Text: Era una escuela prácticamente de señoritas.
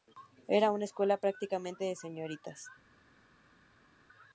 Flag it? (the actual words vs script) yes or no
no